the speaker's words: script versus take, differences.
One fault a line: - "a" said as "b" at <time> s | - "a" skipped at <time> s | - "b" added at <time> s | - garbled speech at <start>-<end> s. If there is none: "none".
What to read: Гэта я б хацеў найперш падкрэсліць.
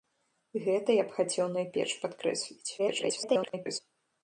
- garbled speech at 2.8-3.8 s